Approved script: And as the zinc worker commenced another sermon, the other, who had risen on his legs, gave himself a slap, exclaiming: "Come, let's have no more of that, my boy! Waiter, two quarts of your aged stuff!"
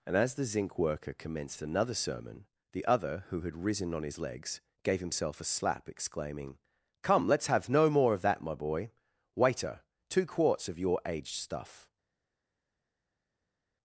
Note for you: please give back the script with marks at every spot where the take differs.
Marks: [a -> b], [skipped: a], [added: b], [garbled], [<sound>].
And as the zinc worker commenced another sermon, the other, who had risen on his legs, gave himself a slap, exclaiming: "Come, let's have no more of that, my boy! Waiter, two quarts of your aged stuff!"